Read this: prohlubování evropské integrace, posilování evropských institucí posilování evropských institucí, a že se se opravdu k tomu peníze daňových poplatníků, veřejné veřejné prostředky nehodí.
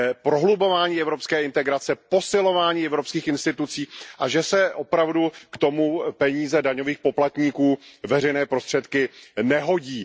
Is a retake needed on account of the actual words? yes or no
yes